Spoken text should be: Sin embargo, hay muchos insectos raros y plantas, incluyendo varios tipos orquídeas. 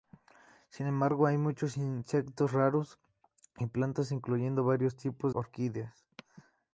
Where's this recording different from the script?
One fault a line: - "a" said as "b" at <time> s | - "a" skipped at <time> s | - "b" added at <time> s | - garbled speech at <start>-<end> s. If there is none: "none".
none